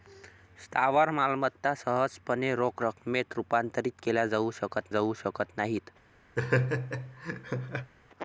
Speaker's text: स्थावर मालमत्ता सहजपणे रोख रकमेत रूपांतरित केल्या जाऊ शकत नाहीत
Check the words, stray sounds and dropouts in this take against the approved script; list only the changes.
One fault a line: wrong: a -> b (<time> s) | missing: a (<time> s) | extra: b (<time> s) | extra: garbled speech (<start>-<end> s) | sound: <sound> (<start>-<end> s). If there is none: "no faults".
extra: जाऊ शकत (4.9 s)
sound: laugh (6.4-7.9 s)